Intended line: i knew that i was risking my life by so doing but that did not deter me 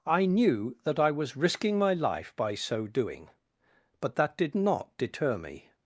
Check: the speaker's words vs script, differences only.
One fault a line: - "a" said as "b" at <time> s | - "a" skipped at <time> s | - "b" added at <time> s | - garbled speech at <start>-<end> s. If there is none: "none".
none